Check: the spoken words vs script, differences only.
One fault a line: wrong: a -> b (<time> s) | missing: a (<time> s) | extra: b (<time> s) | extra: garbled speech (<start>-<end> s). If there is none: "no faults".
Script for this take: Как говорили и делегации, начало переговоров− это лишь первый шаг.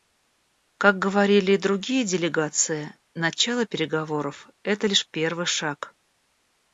extra: другие (1.6 s)